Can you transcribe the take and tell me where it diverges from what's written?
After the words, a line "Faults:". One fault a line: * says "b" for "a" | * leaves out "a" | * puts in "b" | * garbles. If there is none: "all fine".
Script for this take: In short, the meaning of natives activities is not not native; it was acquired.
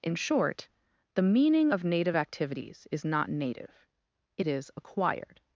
In short, the meaning of native activities is not native; it is acquired.
Faults:
* says "native" for "natives"
* leaves out "not"
* says "is" for "was"